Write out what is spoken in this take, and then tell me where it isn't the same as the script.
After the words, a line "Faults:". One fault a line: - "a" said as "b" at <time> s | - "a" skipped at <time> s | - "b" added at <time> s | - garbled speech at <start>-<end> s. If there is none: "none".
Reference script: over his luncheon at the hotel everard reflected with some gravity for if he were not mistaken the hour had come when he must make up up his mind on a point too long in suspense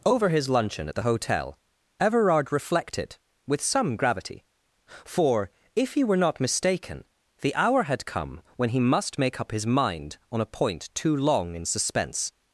over his luncheon at the hotel everard reflected with some gravity for if he were not mistaken the hour had come when he must make up his mind on a point too long in suspense
Faults:
- "up" skipped at 9.5 s